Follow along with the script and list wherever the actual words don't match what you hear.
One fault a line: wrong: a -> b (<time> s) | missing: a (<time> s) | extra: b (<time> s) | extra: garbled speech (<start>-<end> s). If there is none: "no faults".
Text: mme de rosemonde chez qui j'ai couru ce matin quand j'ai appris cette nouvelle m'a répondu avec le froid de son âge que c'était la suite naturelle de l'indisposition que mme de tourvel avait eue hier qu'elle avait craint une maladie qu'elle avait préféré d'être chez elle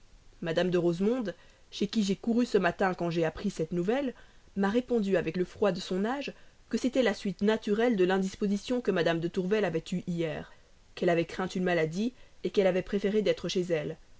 no faults